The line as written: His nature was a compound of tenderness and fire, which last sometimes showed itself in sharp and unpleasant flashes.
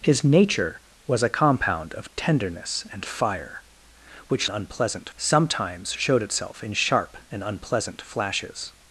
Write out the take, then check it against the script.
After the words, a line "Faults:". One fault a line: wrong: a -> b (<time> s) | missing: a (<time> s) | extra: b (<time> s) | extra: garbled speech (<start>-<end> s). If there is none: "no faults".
His nature was a compound of tenderness and fire, which unpleasant sometimes showed itself in sharp and unpleasant flashes.
Faults:
wrong: last -> unpleasant (4.5 s)